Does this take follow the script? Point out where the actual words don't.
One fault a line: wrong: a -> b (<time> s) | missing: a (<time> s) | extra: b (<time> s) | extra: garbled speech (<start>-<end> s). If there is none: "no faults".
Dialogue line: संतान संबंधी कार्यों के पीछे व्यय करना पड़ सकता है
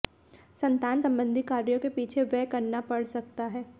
no faults